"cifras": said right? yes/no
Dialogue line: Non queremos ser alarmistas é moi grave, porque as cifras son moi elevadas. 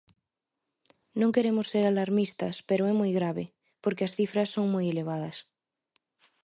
yes